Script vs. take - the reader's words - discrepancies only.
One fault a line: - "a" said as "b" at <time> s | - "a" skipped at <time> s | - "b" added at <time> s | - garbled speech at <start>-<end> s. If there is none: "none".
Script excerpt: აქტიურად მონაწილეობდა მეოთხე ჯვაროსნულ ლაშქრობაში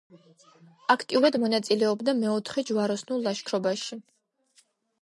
none